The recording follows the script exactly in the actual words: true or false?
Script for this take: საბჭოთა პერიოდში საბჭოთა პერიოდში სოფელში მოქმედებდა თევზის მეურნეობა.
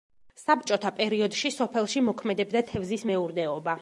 false